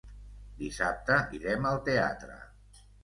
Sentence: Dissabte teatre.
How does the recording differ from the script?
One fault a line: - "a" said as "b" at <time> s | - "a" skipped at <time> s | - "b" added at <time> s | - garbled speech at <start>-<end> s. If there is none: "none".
- "irem al" added at 1.4 s